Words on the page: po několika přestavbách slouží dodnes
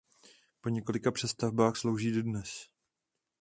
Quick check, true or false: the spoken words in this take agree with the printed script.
true